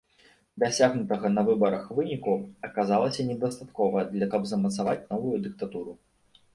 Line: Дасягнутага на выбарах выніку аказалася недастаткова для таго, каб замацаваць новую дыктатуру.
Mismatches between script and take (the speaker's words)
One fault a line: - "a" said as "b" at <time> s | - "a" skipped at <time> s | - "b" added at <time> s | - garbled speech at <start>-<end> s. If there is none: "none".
- "таго" skipped at 4.3 s